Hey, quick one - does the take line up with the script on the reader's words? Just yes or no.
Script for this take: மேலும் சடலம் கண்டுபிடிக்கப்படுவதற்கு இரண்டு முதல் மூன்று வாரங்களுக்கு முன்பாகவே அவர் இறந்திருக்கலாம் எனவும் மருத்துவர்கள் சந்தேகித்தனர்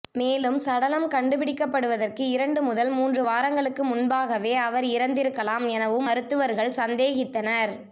yes